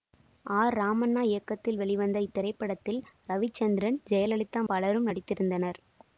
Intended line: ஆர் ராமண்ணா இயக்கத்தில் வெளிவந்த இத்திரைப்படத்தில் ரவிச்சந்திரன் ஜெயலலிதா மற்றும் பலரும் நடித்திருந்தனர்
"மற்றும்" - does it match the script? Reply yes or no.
no